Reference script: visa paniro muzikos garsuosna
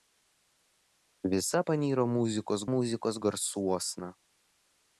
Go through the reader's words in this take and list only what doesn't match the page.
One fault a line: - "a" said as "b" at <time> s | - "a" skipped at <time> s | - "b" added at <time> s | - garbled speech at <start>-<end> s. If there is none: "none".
- "muzikos" added at 2.7 s